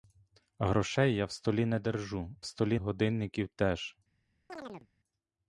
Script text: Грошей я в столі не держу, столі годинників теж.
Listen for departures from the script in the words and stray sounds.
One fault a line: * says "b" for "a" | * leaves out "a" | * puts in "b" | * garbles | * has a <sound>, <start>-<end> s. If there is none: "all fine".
* has a chirp, 4.5-4.9 s